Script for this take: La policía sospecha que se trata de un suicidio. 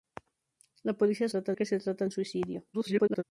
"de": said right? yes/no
no